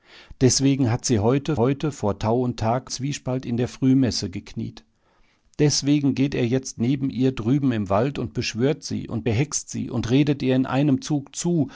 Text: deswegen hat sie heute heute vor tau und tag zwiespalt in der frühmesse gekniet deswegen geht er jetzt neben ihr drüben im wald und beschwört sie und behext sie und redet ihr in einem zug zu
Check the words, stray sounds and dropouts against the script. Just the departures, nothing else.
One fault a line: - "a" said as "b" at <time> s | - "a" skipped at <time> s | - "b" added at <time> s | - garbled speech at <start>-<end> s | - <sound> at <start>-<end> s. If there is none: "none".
none